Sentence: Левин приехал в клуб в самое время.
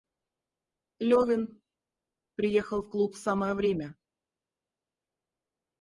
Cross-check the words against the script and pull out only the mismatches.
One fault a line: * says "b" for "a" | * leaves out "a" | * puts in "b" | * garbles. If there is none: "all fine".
all fine